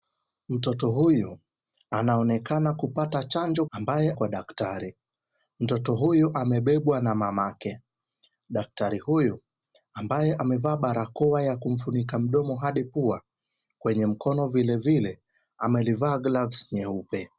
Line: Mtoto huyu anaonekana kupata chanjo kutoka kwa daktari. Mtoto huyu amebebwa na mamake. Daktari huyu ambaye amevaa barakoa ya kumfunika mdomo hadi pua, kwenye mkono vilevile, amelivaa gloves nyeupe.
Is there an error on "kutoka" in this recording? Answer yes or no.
yes